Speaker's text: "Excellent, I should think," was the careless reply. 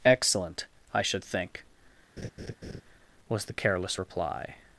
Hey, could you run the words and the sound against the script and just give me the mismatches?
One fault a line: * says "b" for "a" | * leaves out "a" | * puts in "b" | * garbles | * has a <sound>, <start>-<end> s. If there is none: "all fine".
* has a laugh, 2.2-2.8 s